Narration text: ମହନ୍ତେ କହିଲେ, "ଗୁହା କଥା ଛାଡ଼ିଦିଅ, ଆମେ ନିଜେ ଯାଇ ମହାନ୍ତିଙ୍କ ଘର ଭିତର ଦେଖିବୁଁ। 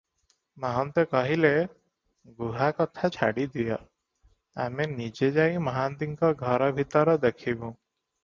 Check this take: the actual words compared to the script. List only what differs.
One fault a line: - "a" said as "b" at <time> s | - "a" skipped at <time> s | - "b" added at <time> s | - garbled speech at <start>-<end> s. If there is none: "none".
none